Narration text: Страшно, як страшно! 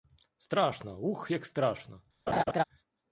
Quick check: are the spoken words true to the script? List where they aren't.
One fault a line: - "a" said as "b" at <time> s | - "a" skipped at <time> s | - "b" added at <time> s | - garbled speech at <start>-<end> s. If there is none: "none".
- "ух" added at 1.0 s